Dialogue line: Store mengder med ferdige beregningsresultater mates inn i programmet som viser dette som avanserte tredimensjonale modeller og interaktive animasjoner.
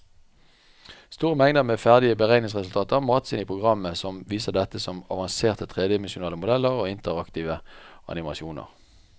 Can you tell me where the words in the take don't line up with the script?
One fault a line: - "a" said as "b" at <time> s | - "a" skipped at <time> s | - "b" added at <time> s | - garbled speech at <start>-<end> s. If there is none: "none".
none